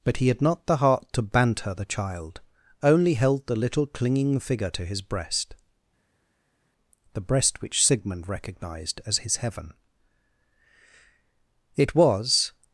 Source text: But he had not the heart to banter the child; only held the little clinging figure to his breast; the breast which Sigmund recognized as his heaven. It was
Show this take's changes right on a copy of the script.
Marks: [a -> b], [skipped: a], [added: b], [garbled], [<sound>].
But he had not the heart to banter the child; only held the little clinging figure to his breast; the breast which Sigmund recognized as his heaven. It was